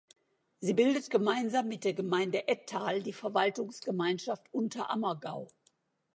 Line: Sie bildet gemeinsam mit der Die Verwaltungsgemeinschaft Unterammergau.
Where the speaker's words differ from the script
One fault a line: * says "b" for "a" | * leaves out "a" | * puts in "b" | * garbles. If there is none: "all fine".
* puts in "Gemeinde Ettal"